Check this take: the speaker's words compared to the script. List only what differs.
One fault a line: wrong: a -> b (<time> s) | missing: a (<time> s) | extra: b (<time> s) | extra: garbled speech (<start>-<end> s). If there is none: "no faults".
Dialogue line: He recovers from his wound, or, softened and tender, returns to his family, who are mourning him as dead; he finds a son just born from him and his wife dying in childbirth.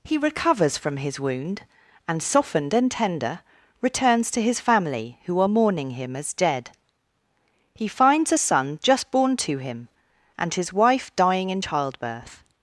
wrong: or -> and (2.1 s)
wrong: from -> to (9.4 s)